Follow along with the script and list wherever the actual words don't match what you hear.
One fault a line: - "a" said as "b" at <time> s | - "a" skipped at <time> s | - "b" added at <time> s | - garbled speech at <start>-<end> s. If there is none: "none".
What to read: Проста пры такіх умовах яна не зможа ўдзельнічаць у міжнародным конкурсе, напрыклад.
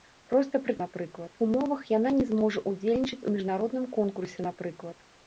- "такіх" said as "напрыклад" at 0.9 s